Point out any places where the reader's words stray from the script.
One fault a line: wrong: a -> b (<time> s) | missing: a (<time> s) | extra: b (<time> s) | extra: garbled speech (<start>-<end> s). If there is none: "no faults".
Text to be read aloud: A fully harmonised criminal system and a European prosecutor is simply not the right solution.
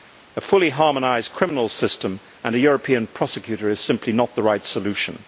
no faults